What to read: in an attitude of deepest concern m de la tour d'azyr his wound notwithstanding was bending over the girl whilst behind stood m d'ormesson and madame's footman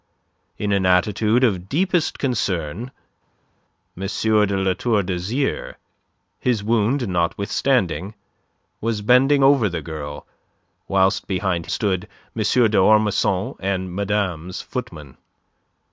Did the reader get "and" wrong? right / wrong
right